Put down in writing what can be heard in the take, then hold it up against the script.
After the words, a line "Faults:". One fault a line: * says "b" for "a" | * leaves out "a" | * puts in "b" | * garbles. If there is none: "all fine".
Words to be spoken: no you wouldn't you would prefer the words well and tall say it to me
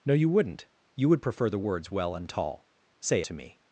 no you wouldn't you would prefer the words well and tall say to me
Faults:
* leaves out "it"